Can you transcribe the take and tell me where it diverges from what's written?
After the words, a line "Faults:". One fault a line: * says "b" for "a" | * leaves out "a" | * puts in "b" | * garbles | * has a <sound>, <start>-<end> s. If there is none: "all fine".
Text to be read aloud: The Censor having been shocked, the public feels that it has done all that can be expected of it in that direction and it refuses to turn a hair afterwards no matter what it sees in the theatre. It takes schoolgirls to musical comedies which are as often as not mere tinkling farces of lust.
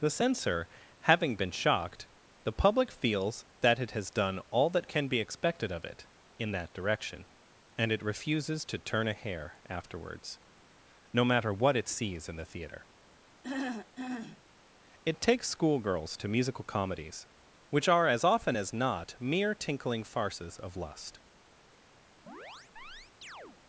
The Censor having been shocked, the public feels that it has done all that can be expected of it in that direction and it refuses to turn a hair afterwards no matter what it sees in the theatre. It takes schoolgirls to musical comedies which are as often as not mere tinkling farces of lust.
Faults:
* has a throat clearing, 13.4-14.4 s
* has a chirp, 22.3-23.6 s